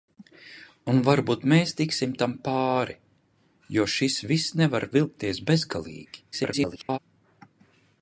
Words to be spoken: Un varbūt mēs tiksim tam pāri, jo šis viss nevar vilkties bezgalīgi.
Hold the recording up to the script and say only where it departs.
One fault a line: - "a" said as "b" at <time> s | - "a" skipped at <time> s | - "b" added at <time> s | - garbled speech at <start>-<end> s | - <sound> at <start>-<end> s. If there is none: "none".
- garbled speech at 6.3-7.0 s